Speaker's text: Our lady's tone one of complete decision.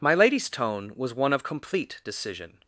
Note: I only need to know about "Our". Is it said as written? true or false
false